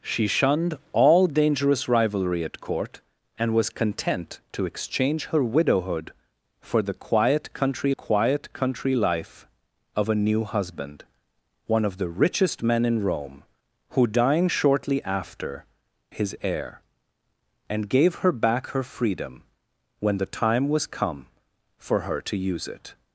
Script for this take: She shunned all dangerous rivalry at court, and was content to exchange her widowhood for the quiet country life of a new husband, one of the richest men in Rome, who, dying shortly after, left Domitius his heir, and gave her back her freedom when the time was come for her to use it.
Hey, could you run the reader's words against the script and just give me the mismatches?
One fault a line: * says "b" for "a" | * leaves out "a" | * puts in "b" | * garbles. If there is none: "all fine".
* puts in "quiet country"
* leaves out "left Domitius"